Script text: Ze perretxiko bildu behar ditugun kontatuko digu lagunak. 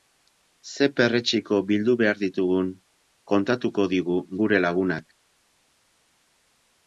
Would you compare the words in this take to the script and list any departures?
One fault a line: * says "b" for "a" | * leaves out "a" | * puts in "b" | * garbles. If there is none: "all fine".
* puts in "gure"